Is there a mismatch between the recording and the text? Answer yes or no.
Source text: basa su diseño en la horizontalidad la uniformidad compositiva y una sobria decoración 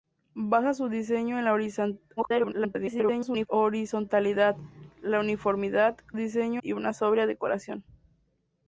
yes